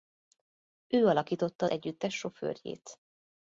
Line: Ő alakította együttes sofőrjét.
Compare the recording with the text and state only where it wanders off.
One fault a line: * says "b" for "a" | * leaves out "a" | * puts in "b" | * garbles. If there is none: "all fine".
all fine